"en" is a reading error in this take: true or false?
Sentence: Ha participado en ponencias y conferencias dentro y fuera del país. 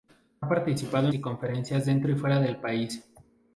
true